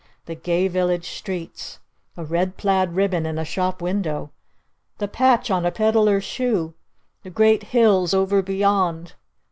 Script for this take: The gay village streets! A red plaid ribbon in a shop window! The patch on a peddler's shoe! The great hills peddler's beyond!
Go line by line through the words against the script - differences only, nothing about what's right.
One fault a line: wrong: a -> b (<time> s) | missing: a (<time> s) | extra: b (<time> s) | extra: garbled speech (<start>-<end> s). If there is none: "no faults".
wrong: peddler's -> over (8.1 s)